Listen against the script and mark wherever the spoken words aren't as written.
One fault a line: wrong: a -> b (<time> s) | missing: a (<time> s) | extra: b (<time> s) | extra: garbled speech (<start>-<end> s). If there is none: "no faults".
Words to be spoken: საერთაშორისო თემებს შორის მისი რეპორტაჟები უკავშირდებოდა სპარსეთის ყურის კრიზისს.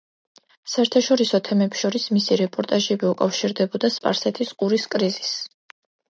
no faults